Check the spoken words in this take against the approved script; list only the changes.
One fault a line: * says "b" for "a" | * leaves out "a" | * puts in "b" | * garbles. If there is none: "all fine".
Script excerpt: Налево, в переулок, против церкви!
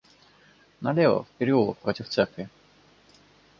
all fine